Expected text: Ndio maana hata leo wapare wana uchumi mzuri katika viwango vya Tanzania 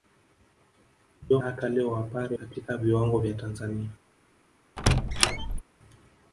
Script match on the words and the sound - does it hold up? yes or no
no